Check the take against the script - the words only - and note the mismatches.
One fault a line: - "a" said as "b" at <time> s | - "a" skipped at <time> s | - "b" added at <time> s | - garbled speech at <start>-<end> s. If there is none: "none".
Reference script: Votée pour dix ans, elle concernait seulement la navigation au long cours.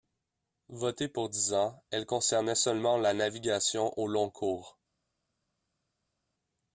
none